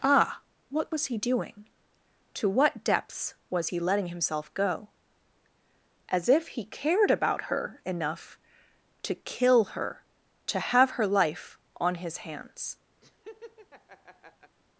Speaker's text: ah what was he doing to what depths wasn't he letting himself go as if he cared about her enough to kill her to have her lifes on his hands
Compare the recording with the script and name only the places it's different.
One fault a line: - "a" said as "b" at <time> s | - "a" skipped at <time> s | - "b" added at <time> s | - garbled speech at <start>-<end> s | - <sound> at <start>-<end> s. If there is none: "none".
- "wasn't" said as "was" at 3.5 s
- "lifes" said as "life" at 11.1 s
- laugh at 13.0-14.6 s